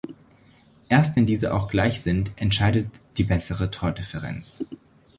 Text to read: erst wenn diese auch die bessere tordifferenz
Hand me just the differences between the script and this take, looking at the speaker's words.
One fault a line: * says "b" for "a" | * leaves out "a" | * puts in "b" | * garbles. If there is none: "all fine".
* puts in "gleich sind entscheidet"